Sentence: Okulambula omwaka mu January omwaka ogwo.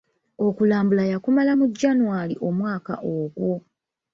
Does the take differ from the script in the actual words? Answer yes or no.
yes